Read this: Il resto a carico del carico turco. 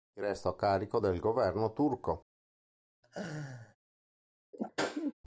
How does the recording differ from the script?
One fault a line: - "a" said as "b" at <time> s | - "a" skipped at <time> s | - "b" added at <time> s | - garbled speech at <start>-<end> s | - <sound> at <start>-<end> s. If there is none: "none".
- "carico" said as "governo" at 1.2 s
- laugh at 3.0-3.8 s
- sneeze at 4.5-5.1 s